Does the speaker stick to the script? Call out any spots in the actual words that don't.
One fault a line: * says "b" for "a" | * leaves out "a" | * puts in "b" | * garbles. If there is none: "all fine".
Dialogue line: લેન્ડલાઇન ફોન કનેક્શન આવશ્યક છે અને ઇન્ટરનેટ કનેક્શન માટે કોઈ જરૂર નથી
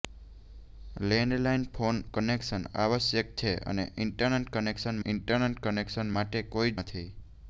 * puts in "ઇન્ટરનેટ કનેક્શન"
* leaves out "જરૂર"